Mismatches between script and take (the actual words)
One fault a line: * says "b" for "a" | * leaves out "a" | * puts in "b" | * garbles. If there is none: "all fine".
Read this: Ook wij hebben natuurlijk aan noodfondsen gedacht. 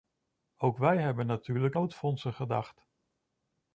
* leaves out "aan"